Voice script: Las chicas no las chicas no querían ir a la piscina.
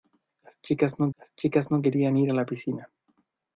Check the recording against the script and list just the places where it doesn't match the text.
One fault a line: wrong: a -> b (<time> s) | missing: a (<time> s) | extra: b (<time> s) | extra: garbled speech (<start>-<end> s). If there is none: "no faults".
no faults